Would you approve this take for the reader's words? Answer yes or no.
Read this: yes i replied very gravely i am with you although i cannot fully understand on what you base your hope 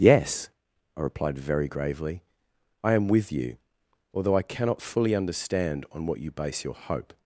yes